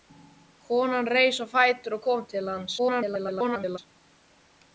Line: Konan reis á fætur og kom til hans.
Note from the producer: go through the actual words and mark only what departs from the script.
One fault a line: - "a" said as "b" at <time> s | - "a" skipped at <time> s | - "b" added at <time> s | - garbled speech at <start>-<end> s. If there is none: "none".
- garbled speech at 2.8-3.8 s